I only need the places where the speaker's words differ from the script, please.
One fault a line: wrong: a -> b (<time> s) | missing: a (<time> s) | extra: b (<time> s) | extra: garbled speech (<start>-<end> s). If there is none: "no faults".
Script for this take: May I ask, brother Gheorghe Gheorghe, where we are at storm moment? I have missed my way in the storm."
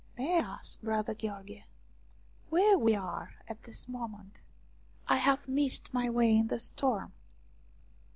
missing: Gheorghe (1.6 s)
wrong: storm -> this (3.6 s)